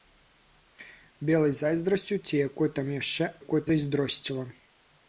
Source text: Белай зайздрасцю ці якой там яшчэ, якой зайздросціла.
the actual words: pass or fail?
pass